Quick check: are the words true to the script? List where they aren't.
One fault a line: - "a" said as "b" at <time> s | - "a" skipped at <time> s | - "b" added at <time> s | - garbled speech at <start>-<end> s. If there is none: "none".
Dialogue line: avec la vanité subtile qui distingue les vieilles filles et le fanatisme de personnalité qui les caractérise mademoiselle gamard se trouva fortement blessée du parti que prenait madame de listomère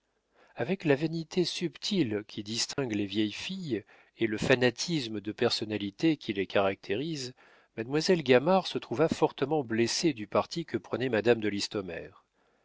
none